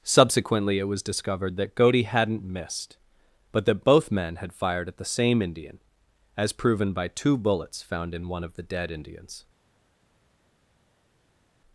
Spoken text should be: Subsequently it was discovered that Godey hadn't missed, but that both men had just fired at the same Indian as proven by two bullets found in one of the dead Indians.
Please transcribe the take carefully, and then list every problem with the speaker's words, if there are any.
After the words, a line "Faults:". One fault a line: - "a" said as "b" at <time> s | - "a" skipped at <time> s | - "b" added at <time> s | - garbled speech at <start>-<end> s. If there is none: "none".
Subsequently it was discovered that Godey hadn't missed, but that both men had fired at the same Indian as proven by two bullets found in one of the dead Indians.
Faults:
- "just" skipped at 4.5 s